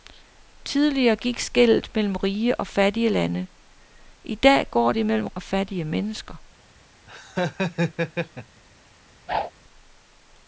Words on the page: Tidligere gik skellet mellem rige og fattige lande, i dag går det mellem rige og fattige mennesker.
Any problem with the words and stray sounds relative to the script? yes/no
yes